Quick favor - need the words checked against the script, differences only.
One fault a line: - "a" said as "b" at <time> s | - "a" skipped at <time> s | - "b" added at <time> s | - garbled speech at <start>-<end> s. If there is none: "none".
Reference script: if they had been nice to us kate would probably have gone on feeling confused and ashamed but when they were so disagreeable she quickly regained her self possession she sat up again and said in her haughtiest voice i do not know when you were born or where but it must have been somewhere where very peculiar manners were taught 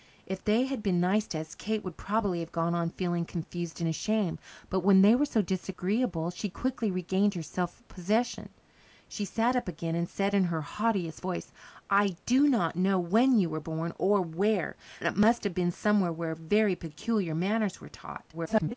- "but" skipped at 14.8 s
- garbled speech at 18.3-18.7 s